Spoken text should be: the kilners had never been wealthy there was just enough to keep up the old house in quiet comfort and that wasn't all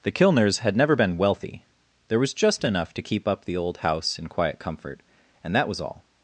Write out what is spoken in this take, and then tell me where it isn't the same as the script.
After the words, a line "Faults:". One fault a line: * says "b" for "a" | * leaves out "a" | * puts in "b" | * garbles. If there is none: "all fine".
the kilners had never been wealthy there was just enough to keep up the old house in quiet comfort and that was all
Faults:
* says "was" for "wasn't"